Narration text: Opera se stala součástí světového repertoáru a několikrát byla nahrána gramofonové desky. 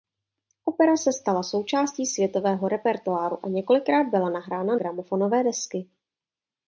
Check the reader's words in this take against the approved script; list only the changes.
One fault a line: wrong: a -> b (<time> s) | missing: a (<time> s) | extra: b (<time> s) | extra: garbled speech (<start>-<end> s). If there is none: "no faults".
no faults